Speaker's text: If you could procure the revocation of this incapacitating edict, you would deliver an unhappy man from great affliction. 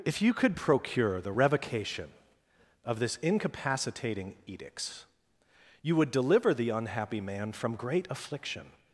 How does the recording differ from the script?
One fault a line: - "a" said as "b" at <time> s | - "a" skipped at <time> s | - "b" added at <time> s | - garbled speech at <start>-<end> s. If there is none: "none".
- "edict" said as "edicts" at 4.4 s
- "an" said as "the" at 6.5 s